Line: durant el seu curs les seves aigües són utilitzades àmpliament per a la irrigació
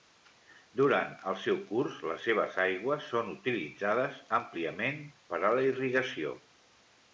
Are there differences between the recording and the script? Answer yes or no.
no